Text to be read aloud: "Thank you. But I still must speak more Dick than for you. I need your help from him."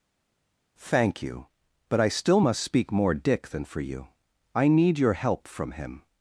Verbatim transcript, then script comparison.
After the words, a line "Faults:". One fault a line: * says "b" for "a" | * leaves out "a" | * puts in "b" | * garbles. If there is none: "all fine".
"Thank you. But I still must speak more Dick than for you. I need your help from him."
Faults:
all fine